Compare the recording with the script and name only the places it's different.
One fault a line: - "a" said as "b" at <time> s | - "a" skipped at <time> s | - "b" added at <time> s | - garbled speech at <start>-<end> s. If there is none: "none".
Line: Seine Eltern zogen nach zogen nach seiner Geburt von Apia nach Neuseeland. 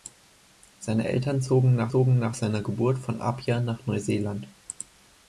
none